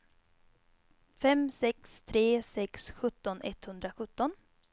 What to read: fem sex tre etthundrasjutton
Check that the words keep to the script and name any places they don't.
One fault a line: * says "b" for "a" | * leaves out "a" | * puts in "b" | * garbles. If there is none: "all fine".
* puts in "sex sjutton"